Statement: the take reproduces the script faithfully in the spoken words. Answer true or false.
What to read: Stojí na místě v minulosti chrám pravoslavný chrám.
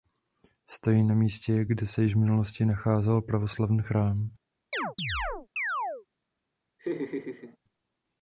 false